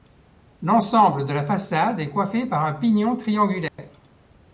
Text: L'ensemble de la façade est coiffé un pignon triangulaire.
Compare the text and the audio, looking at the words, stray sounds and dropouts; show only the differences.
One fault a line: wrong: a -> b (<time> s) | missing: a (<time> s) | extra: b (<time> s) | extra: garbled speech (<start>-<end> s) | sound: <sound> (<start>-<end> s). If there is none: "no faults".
extra: par (2.5 s)
sound: dropout (3.7-3.8 s)